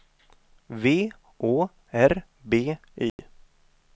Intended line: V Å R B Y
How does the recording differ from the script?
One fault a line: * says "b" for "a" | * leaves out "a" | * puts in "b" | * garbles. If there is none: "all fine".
all fine